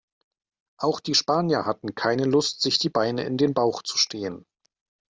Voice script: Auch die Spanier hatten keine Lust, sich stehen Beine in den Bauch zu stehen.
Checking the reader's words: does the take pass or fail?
fail